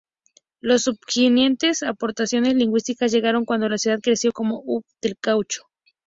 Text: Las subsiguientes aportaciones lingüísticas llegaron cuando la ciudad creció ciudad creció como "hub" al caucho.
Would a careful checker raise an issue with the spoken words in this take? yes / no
yes